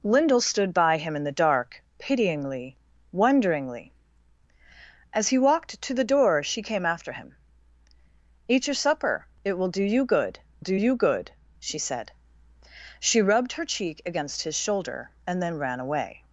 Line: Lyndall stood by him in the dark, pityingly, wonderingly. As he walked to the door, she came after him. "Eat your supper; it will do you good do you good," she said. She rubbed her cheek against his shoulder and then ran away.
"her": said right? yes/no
yes